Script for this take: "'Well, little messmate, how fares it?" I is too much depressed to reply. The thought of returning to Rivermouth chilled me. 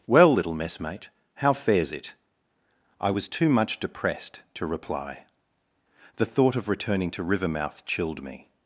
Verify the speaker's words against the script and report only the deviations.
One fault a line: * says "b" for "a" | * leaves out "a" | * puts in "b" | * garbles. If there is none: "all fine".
* says "was" for "is"